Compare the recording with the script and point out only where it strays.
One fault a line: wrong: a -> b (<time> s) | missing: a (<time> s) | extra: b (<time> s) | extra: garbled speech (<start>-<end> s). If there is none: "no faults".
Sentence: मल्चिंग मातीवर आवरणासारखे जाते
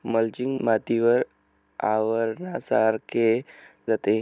no faults